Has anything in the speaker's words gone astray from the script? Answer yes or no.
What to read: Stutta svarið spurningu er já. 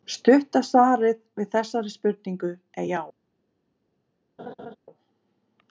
yes